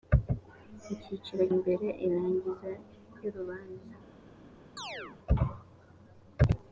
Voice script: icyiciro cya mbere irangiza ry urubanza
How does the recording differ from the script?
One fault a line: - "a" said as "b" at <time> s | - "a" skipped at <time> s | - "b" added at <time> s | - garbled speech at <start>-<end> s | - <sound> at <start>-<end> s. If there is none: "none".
- "cya" skipped at 1.4 s
- "ry" skipped at 2.7 s
- chirp at 4.8-5.2 s